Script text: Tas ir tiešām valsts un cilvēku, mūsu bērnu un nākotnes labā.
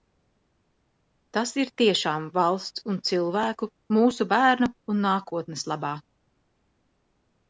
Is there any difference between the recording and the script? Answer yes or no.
no